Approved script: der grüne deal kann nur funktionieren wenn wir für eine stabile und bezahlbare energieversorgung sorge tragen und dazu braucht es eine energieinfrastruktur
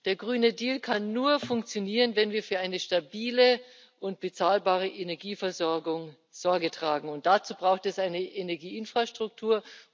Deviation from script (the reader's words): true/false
false